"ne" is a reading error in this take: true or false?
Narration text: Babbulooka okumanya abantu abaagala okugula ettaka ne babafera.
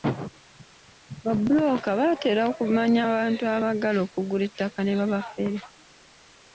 false